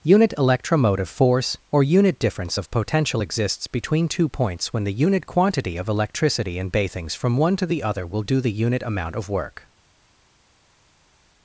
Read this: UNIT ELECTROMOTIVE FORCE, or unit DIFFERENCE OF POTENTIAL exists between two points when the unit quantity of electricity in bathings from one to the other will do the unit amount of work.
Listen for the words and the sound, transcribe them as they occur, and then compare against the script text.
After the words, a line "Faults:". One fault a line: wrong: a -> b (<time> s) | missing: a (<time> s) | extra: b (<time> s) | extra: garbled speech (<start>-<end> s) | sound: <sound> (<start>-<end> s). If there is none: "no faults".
UNIT ELECTROMOTIVE FORCE, or unit DIFFERENCE OF POTENTIAL exists between two points when the unit quantity of electricity in bathings from one to the other will do the unit amount of work.
Faults:
no faults